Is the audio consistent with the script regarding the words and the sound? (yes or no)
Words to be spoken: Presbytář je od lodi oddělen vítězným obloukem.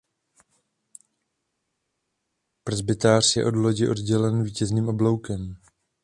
yes